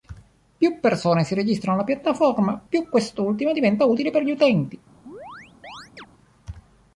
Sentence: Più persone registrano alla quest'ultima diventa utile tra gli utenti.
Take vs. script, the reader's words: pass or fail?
fail